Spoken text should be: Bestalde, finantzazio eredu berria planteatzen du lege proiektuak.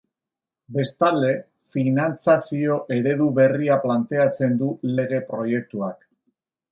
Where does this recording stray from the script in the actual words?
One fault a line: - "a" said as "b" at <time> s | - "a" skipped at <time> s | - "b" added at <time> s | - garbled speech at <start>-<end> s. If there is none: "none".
none